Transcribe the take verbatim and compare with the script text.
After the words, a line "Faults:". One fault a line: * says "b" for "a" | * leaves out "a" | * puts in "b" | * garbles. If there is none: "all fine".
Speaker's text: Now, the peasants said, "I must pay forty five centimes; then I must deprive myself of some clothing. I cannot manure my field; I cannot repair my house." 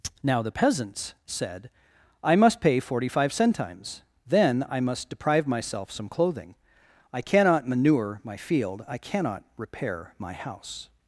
Now, the peasants said, "I must pay forty five centimes; then I must deprive myself some clothing. I cannot manure my field; I cannot repair my house."
Faults:
* leaves out "of"